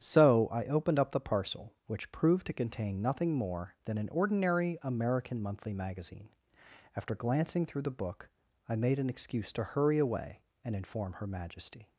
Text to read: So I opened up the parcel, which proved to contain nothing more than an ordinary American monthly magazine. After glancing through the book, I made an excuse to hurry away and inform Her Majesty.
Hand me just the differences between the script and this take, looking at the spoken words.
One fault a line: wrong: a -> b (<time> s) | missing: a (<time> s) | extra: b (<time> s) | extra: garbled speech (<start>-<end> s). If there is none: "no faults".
no faults